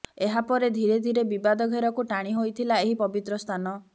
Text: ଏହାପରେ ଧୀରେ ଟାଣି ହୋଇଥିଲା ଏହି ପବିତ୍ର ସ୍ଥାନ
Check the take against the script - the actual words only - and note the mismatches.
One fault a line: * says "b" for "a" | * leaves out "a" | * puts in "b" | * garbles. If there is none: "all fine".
* puts in "ଧୀରେ ବିବାଦ ଘେରକୁ"